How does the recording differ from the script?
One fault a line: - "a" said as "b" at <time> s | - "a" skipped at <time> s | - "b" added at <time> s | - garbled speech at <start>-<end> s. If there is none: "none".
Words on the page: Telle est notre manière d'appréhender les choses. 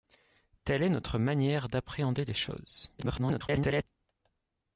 - garbled speech at 3.0-3.8 s